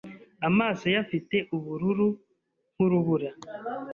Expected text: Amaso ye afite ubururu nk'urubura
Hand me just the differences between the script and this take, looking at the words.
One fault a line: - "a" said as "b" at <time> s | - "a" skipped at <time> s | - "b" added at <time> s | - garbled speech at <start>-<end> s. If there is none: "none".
none